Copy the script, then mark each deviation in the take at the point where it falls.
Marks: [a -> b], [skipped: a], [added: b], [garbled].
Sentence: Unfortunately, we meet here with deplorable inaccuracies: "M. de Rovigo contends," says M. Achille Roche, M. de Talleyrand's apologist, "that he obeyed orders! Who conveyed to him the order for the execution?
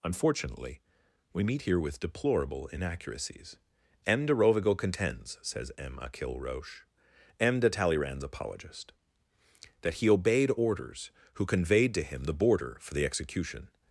Unfortunately, we meet here with deplorable inaccuracies: "M. de Rovigo contends," says M. Achille Roche, M. de Talleyrand's apologist, "that he obeyed orders! Who conveyed to him the [order -> border] for the execution?